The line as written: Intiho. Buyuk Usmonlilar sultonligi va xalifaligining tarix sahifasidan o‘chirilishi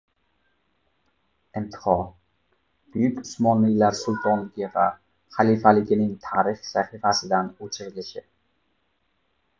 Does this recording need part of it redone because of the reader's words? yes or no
no